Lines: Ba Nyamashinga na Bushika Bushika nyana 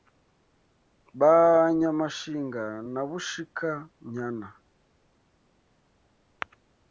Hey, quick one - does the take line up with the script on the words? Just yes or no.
no